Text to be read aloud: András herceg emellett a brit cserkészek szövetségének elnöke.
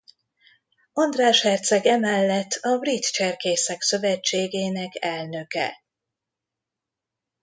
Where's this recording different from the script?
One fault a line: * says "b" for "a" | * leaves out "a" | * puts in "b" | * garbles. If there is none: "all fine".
all fine